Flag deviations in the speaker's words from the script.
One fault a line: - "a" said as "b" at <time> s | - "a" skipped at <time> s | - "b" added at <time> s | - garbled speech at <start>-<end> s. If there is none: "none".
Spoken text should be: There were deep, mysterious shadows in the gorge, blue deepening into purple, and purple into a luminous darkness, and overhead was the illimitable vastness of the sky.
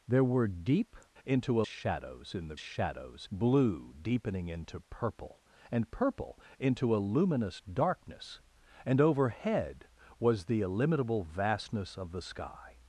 - "mysterious" said as "into" at 1.2 s
- "gorge" said as "shadows" at 2.6 s